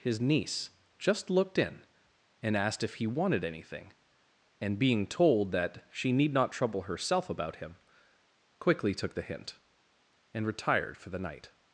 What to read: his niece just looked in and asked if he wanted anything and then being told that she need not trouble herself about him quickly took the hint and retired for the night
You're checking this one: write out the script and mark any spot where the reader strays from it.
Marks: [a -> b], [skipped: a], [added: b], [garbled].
his niece just looked in and asked if he wanted anything and [skipped: then] being told that she need not trouble herself about him quickly took the hint and retired for the night